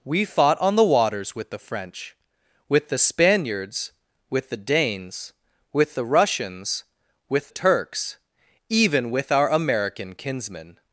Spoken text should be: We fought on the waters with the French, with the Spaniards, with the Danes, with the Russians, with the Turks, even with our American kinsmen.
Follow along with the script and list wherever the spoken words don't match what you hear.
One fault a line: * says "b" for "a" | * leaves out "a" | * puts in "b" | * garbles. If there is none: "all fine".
* leaves out "the"